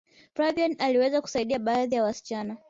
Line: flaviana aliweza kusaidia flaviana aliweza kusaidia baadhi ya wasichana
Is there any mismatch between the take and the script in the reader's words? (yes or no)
yes